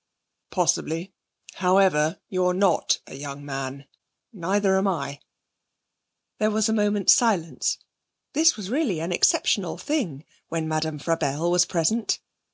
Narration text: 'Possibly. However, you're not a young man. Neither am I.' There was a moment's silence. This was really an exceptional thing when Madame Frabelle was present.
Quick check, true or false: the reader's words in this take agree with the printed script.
true